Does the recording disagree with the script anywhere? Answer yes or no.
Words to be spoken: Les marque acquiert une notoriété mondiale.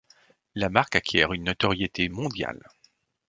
yes